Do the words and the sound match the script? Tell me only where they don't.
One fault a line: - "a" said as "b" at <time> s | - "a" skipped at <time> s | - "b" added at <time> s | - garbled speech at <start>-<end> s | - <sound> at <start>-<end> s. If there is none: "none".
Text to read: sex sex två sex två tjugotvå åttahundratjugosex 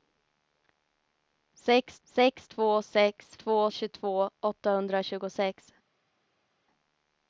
none